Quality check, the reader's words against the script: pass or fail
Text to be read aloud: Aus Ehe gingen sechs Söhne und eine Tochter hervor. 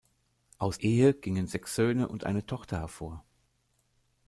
pass